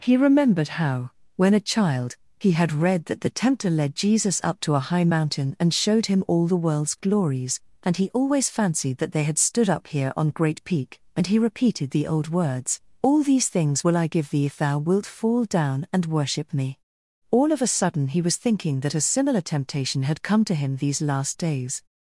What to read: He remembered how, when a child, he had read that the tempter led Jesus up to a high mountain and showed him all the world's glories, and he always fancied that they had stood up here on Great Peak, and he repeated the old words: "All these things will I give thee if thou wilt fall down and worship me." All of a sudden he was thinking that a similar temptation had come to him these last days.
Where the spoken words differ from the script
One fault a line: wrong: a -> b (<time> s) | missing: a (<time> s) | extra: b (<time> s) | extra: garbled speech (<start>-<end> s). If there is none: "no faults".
no faults